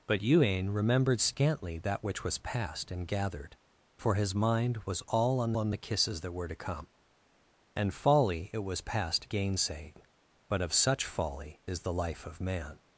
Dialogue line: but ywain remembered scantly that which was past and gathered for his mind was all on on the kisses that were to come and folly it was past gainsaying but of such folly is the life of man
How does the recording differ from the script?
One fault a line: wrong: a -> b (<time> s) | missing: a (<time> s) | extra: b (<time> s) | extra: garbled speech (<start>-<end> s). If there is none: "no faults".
no faults